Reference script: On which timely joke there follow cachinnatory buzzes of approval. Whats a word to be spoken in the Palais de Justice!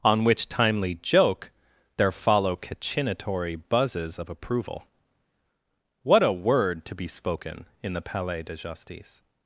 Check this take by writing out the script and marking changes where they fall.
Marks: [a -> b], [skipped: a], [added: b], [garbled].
On which timely joke there follow cachinnatory buzzes of approval. [Whats -> What] a word to be spoken in the Palais de Justice!